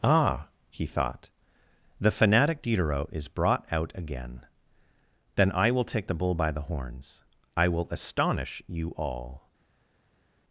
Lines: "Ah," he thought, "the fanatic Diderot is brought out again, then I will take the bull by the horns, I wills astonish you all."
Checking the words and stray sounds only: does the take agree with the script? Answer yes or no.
no